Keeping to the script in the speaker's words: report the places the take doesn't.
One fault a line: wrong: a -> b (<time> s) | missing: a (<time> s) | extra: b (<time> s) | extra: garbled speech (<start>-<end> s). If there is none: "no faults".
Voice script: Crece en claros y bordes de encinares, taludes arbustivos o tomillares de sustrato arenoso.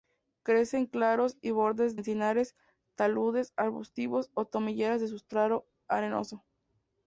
missing: de (2.0 s)